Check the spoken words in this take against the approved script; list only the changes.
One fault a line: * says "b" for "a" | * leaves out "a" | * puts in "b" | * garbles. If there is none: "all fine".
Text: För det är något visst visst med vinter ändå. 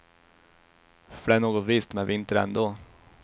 * leaves out "visst"